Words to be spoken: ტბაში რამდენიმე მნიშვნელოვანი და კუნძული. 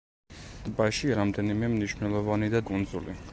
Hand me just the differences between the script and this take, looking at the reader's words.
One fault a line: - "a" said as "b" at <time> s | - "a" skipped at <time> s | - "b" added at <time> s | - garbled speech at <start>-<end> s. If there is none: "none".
none